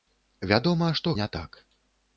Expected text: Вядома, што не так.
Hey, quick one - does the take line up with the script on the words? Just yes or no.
yes